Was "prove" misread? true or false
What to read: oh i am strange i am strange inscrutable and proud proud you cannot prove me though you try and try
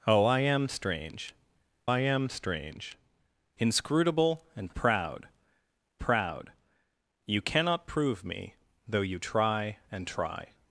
false